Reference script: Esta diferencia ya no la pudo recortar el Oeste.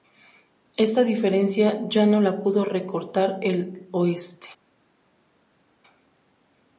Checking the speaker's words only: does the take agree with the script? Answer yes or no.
yes